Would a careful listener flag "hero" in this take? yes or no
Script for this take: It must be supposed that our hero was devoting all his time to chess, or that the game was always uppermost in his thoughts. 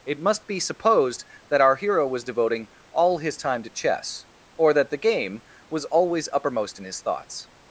no